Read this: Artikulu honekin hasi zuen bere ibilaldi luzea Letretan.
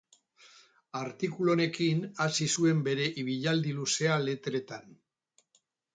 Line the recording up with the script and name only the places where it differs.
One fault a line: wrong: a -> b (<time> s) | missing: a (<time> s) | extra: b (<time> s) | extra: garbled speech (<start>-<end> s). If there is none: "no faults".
no faults